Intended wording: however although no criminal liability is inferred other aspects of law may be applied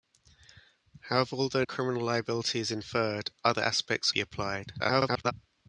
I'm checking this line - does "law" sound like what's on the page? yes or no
no